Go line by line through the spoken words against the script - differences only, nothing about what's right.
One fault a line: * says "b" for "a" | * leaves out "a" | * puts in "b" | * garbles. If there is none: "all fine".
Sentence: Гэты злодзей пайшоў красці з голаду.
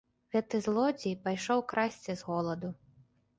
all fine